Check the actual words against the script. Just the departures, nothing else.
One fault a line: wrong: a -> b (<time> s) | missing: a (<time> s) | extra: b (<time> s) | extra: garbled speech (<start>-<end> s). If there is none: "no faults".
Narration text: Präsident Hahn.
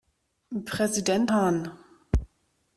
no faults